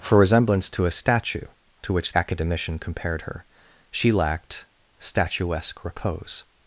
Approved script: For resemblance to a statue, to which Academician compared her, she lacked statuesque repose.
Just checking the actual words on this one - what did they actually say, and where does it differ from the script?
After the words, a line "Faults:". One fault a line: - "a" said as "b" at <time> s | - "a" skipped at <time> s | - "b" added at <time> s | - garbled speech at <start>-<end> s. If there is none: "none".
For resemblance to a statue, to which Academician compared her, she lacked statuesque repose.
Faults:
none